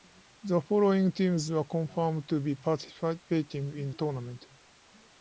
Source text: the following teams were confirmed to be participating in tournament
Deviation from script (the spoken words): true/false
false